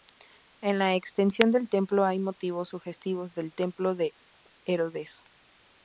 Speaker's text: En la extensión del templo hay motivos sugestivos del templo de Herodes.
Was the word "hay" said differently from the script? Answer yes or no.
no